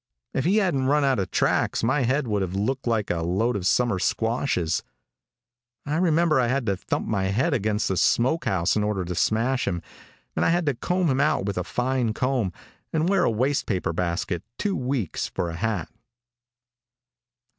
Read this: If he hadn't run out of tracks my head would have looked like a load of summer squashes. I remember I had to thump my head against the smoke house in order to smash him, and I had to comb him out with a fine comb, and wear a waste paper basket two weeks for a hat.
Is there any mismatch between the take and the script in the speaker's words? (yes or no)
no